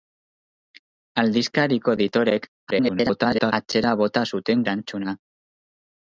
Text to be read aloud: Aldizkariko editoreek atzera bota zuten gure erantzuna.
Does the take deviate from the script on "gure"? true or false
true